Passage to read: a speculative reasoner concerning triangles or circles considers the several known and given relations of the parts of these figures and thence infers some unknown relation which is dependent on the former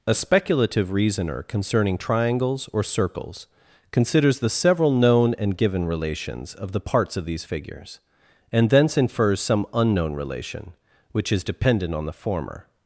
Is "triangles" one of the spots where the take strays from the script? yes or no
no